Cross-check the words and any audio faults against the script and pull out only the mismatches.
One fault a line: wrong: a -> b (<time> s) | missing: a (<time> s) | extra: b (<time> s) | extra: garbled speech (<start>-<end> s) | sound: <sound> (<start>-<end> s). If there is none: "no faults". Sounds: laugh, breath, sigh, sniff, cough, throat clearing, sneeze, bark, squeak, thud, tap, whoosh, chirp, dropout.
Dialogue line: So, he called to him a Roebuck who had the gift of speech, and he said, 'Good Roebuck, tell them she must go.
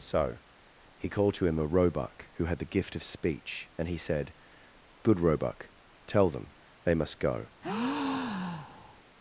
wrong: she -> they (6.8 s)
sound: breath (7.6-9.0 s)